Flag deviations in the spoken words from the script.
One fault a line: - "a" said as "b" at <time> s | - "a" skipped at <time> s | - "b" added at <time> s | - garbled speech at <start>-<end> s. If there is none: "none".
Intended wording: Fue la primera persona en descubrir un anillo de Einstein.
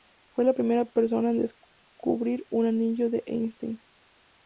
none